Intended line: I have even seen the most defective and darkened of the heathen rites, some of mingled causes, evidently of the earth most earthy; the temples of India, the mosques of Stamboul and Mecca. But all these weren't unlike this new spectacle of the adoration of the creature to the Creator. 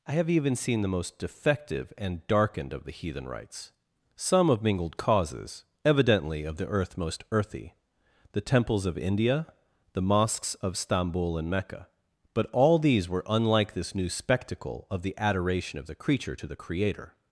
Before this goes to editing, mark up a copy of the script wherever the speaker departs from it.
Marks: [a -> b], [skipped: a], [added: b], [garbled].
I have even seen the most defective and darkened of the heathen rites, some of mingled causes, evidently of the earth most earthy; the temples of India, the mosques of Stamboul and Mecca. But all these [weren't -> were] unlike this new spectacle of the adoration of the creature to the Creator.